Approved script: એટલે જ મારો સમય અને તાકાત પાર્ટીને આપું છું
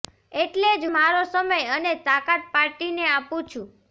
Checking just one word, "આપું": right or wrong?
right